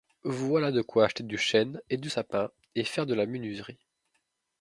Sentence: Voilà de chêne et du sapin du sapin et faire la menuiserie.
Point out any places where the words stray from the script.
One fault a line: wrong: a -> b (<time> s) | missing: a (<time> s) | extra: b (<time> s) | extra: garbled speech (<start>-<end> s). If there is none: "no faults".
wrong: chêne et -> quoi acheter (0.8 s)
wrong: sapin -> chêne et (1.4 s)
extra: de (3.0 s)